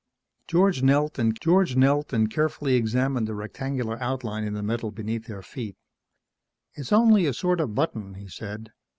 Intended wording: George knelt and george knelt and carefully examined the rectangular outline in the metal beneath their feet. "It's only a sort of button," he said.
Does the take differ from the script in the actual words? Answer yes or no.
no